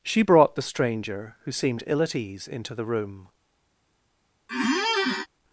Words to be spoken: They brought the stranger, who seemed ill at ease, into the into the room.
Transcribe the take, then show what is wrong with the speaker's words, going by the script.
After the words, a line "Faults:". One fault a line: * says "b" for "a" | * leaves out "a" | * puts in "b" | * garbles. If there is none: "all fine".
She brought the stranger, who seemed ill at ease, into the room.
Faults:
* says "She" for "They"
* leaves out "into the"